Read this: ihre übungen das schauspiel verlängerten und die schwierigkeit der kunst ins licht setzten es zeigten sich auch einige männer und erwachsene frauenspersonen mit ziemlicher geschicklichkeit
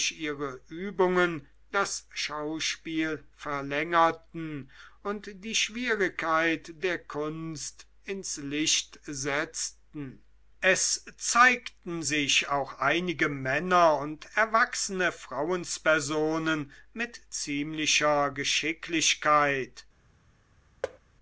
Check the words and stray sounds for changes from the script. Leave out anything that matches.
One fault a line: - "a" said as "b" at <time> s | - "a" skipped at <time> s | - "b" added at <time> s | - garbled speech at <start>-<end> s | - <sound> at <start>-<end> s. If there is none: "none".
- thud at 20.8-21.0 s